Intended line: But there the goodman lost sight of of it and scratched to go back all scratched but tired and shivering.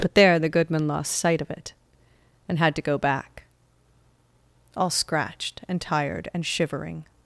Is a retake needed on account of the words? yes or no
yes